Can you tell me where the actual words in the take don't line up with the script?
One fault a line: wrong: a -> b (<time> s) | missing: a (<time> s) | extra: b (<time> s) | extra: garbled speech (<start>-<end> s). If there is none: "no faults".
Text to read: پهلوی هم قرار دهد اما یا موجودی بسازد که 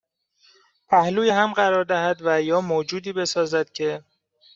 wrong: اما -> و (2.2 s)